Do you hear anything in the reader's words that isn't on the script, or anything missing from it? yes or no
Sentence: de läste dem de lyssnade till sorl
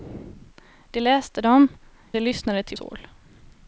no